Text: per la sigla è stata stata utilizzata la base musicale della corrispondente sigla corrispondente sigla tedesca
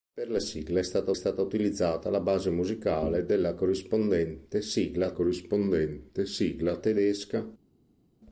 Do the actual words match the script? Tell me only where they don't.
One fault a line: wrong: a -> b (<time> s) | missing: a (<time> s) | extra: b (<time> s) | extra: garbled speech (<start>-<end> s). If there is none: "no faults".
no faults